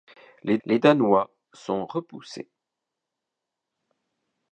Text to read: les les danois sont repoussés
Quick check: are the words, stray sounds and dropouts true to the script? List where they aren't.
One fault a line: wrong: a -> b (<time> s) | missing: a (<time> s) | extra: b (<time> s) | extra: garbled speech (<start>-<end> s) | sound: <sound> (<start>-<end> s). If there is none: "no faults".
no faults